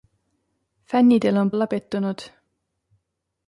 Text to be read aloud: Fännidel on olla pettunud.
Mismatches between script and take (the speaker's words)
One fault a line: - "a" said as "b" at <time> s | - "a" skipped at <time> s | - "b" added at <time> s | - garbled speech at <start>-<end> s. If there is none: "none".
none